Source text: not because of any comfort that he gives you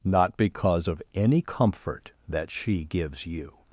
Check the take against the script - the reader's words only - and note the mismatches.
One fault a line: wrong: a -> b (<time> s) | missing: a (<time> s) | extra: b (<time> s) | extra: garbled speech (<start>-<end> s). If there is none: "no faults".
wrong: he -> she (2.5 s)